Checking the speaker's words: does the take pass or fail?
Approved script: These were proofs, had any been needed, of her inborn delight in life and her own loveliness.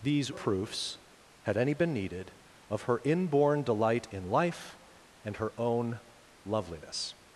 fail